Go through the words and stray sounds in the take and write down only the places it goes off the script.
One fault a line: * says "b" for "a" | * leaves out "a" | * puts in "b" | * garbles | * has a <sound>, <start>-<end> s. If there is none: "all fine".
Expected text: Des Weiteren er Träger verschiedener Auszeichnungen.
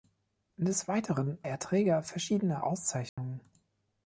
* has a dropout, 3.1-3.2 s